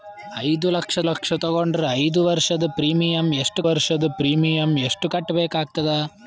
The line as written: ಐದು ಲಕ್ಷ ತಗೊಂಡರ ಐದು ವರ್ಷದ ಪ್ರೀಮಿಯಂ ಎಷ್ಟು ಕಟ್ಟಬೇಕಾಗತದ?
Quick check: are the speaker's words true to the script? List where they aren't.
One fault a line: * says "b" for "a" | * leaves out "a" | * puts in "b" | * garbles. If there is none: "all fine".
* puts in "ಲಕ್ಷ"
* puts in "ವರ್ಷದ ಪ್ರೀಮಿಯಂ ಎಷ್ಟು"